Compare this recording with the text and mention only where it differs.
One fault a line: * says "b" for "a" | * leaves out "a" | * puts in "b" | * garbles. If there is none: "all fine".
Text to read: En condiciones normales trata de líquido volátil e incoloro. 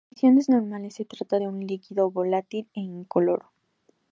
* puts in "se"
* puts in "un"